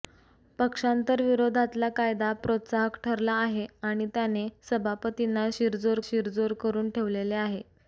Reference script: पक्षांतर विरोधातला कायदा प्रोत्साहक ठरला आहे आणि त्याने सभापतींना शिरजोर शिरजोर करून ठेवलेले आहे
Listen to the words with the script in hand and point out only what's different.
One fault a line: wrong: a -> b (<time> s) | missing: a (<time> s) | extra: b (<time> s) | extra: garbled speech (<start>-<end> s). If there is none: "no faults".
no faults